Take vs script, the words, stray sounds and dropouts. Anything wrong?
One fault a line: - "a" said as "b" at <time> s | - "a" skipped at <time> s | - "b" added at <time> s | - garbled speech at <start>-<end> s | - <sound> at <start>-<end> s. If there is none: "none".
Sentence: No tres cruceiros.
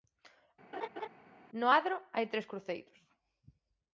- laugh at 0.7-1.1 s
- "adro hai" added at 1.8 s